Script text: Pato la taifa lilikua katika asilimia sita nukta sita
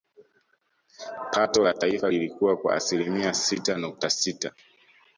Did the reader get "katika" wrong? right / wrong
wrong